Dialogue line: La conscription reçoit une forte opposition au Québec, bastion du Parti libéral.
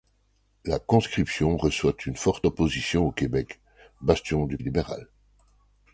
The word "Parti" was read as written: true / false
false